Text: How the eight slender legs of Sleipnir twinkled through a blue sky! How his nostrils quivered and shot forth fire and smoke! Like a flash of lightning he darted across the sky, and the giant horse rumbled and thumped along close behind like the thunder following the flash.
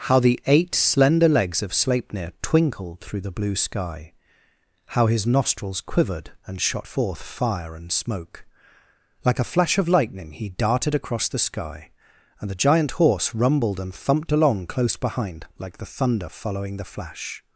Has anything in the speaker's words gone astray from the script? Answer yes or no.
yes